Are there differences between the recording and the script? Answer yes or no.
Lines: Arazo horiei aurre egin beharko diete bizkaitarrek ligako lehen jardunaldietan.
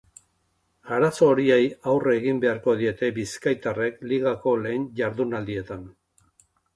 no